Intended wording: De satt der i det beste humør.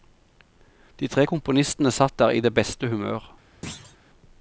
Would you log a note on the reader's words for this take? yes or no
yes